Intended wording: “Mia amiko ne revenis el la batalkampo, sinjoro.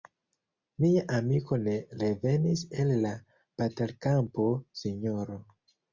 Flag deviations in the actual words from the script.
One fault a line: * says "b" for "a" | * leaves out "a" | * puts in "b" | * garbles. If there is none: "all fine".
all fine